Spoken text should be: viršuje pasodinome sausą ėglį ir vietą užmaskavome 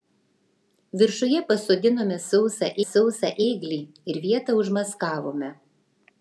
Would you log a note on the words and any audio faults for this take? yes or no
yes